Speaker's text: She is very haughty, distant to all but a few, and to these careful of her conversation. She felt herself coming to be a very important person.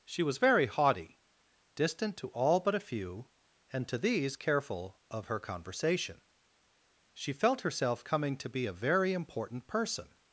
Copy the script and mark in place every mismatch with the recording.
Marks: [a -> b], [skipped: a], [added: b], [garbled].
She [is -> was] very haughty, distant to all but a few, and to these careful of her conversation. She felt herself coming to be a very important person.